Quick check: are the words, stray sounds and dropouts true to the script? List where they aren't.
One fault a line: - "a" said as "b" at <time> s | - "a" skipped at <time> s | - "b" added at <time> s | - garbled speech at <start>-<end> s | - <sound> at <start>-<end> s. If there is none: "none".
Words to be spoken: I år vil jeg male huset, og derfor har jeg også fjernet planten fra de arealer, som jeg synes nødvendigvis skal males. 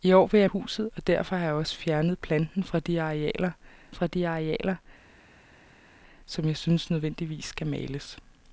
- "male" skipped at 0.5 s
- "fra de arealer" added at 3.9 s